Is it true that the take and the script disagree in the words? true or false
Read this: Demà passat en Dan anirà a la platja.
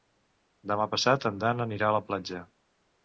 false